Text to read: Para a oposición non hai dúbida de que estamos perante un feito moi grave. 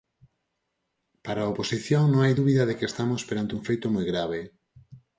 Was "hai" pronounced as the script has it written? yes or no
yes